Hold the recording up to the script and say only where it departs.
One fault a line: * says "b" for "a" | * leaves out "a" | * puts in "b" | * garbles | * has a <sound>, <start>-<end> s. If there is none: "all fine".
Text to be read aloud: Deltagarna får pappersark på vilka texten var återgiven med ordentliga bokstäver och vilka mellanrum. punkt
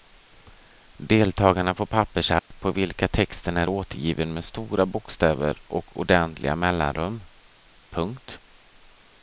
* has a dropout, 2.4-2.5 s
* says "är" for "var"
* says "stora" for "ordentliga"
* says "ordentliga" for "vilka"